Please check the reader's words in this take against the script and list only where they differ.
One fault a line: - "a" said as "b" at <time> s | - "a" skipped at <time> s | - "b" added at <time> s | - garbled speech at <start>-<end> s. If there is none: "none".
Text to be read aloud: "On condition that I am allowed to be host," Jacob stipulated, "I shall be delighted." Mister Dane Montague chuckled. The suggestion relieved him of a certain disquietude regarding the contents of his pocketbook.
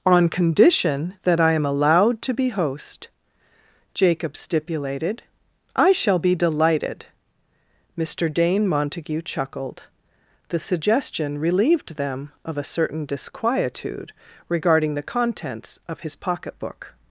- "him" said as "them" at 12.0 s